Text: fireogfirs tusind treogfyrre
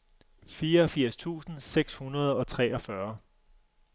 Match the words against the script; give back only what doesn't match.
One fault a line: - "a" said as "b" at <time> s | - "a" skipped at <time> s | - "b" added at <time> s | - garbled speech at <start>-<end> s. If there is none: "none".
- "seks hundrede og" added at 1.6 s